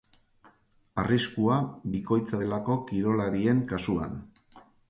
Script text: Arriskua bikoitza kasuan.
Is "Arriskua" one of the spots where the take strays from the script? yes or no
no